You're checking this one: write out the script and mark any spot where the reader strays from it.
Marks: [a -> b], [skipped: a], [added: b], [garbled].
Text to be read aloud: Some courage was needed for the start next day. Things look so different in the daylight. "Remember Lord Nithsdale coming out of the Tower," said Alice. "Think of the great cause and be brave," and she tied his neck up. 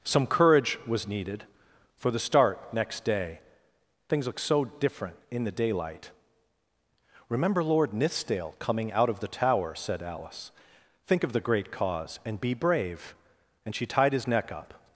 Some courage was needed for the start next day. Things look so different in the daylight. "Remember Lord Nithsdale coming out of the Tower," said Alice. "Think of the great cause and be brave," and she tied his neck up.